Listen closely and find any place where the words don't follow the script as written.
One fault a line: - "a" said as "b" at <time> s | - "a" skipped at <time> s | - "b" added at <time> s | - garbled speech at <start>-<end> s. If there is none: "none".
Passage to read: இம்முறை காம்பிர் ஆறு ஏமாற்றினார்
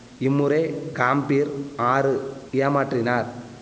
none